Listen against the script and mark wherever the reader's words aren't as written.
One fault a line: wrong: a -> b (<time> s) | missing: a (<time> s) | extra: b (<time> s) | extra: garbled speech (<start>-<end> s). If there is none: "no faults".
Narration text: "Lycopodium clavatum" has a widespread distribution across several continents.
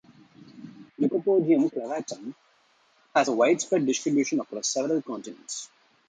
no faults